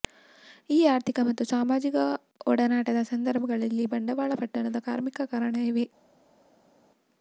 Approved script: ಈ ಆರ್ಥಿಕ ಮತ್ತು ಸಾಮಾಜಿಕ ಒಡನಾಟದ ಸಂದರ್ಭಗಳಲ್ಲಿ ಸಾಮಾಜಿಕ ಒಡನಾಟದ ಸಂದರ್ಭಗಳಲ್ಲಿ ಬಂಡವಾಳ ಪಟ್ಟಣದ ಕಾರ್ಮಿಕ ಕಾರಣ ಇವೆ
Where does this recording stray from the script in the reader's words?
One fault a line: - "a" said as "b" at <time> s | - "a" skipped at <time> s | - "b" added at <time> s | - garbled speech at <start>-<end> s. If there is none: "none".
- "ಸಾಮಾಜಿಕ ಒಡನಾಟದ ಸಂದರ್ಭಗಳಲ್ಲಿ" skipped at 3.9 s